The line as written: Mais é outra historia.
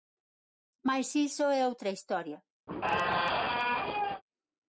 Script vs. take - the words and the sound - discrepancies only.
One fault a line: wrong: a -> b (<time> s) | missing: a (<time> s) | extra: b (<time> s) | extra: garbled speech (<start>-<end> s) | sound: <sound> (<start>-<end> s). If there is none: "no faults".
extra: iso (1.1 s)
sound: squeak (2.7-4.2 s)